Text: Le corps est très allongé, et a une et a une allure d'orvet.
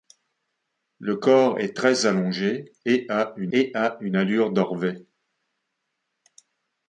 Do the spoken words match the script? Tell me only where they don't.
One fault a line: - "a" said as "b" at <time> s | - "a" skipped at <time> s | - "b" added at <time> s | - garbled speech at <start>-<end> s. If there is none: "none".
none